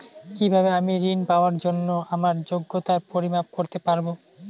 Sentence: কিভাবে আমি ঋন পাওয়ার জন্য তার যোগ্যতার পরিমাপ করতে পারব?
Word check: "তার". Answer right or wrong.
wrong